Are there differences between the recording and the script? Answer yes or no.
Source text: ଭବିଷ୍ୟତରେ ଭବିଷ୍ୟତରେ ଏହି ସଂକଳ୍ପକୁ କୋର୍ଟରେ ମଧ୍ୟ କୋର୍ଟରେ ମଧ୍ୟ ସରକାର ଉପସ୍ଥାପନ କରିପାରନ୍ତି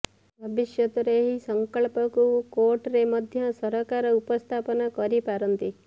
yes